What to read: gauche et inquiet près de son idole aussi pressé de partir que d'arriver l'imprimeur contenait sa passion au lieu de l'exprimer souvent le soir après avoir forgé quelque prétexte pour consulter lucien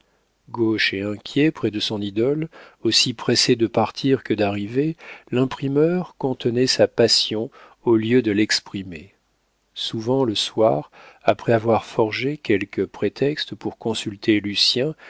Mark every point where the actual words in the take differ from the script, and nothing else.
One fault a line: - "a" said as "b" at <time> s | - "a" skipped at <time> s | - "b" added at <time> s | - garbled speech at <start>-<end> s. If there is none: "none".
none